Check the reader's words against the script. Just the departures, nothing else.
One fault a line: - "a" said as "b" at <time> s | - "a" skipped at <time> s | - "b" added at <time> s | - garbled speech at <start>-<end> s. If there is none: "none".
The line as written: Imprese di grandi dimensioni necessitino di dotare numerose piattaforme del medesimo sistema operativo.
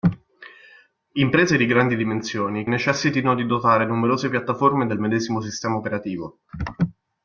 none